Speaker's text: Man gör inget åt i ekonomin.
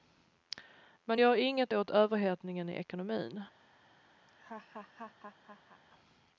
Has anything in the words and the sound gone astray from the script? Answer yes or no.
yes